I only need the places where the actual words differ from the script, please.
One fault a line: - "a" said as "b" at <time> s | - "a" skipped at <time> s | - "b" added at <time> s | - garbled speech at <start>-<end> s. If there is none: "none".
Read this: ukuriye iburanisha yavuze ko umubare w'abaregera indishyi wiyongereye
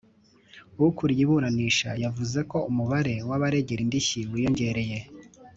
none